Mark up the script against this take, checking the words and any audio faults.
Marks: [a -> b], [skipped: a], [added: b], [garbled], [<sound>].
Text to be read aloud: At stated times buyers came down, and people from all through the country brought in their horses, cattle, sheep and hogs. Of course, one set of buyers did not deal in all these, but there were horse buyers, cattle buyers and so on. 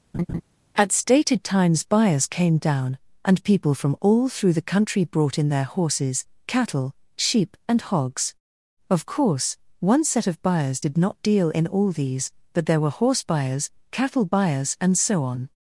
[laugh] At stated times buyers came down, and people from all through the country brought in their horses, cattle, sheep and hogs. Of course, one set of buyers did not deal in all these, but there were horse buyers, cattle buyers and so on.